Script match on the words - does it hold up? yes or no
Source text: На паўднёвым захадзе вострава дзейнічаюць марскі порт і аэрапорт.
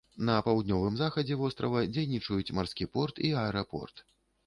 yes